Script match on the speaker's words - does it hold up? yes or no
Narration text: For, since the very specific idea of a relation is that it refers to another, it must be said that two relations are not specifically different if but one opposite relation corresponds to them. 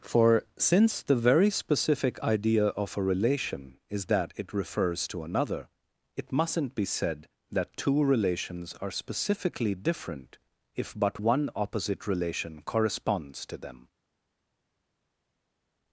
no